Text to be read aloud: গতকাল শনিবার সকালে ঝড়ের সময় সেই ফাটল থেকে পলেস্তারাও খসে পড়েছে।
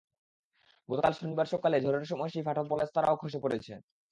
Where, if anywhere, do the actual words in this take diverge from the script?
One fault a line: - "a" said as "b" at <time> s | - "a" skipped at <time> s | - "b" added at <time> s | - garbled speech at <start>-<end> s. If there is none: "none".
- "থেকে" skipped at 2.6 s